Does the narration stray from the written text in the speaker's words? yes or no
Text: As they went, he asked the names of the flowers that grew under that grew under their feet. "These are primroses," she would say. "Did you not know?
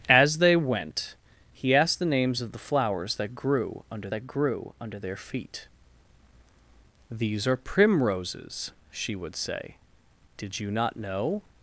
no